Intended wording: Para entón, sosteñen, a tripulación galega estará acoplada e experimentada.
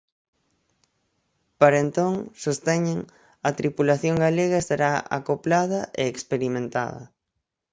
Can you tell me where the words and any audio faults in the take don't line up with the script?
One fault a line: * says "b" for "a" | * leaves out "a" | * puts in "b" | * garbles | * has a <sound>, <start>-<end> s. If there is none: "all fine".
all fine